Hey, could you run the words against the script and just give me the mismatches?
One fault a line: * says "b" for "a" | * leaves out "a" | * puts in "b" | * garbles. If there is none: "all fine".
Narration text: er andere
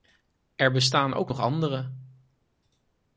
* puts in "bestaan ook nog"